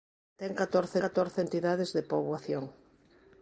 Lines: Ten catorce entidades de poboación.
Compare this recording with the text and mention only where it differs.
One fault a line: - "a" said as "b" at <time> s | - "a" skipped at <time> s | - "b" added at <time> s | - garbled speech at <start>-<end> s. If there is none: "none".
- "catorce" added at 1.0 s